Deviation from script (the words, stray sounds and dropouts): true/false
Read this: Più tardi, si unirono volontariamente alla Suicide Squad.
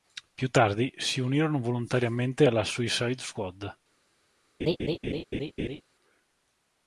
true